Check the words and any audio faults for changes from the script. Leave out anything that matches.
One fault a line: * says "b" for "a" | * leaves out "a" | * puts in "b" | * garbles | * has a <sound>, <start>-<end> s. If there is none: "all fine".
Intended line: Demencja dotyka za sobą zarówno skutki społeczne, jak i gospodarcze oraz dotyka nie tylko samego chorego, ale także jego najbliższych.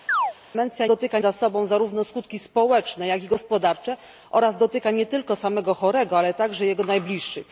* has a chirp, 0.1-0.3 s